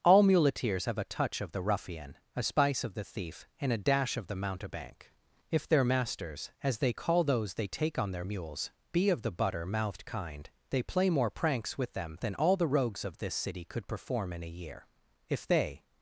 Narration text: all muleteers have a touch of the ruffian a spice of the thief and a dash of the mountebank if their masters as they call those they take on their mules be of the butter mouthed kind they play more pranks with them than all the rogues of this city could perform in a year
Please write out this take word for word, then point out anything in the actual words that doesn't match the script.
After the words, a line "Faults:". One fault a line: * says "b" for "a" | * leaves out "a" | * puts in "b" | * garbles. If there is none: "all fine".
all muleteers have a touch of the ruffian a spice of the thief and a dash of the mountebank if their masters as they call those they take on their mules be of the butter mouthed kind they play more pranks with them than all the rogues of this city could perform in a year if they
Faults:
* puts in "if they"